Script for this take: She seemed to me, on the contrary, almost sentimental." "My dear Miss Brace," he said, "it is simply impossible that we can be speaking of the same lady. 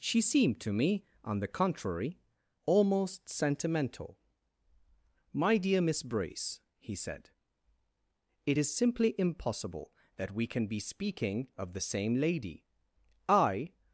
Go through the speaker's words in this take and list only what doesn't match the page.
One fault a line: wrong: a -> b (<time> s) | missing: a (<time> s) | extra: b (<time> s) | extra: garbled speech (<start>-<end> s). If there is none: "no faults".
extra: I (13.3 s)